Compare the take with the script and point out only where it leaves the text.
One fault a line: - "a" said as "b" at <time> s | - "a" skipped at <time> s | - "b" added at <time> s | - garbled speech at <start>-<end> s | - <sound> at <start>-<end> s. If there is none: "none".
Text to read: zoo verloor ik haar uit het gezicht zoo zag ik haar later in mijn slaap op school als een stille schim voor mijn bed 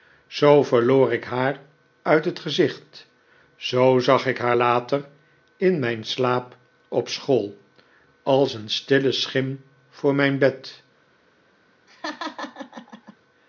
- laugh at 11.9-13.2 s